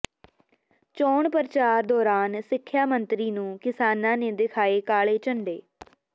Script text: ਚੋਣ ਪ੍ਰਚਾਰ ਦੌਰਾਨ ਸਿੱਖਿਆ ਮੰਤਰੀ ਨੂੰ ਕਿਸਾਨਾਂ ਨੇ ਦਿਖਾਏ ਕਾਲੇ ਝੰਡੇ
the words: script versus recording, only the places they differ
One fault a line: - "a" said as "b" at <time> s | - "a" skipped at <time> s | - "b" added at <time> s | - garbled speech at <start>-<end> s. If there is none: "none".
none